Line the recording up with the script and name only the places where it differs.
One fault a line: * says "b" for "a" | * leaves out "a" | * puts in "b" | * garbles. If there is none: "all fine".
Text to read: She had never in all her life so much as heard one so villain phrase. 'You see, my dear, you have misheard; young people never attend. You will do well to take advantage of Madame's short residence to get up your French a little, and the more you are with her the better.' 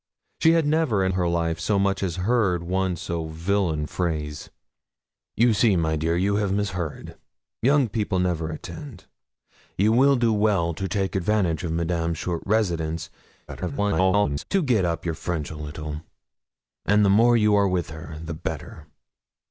* leaves out "all"
* garbles